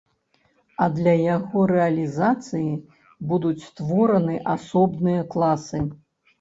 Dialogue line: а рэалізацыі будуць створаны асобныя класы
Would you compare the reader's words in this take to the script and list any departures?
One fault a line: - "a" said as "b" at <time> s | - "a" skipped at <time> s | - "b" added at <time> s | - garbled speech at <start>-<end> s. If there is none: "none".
- "для яго" added at 0.9 s